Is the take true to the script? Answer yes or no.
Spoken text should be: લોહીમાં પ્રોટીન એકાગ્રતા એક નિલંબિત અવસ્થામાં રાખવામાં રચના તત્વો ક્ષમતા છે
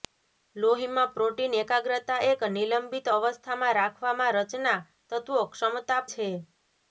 yes